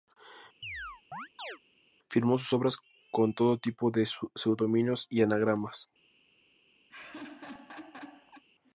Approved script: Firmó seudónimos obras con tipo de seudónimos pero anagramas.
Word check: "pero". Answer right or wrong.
wrong